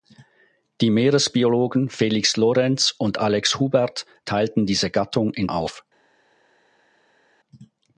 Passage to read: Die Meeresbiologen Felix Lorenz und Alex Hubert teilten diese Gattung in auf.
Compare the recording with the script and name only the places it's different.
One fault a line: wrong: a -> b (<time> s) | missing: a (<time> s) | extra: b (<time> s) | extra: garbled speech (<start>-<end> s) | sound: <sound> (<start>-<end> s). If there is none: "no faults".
no faults